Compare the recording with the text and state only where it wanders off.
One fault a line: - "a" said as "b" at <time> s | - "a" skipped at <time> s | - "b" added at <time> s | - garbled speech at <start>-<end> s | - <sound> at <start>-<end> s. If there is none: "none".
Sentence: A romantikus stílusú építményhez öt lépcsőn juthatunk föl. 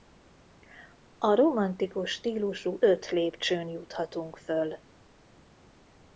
- "építményhez" skipped at 2.8 s